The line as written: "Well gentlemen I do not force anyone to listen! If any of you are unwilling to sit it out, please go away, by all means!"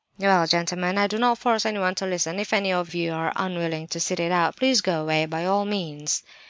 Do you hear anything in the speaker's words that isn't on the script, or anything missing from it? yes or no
no